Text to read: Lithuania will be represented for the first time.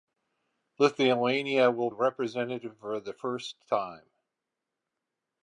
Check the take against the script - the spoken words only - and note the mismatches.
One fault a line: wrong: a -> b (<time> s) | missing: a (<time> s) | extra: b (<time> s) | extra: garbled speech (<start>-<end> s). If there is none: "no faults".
missing: be (1.9 s)